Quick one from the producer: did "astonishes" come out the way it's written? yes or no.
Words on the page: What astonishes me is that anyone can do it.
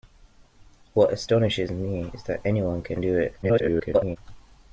yes